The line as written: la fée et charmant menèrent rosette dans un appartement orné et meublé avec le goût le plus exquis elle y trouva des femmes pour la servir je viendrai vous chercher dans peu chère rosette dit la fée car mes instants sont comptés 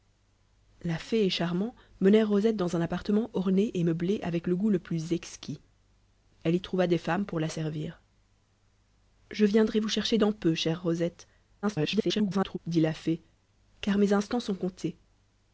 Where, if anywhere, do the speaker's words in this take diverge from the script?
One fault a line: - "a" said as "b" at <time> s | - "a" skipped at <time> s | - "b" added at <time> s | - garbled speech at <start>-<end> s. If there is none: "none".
- garbled speech at 11.6-12.6 s